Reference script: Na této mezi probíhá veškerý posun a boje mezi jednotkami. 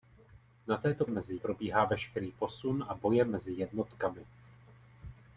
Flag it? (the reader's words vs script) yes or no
no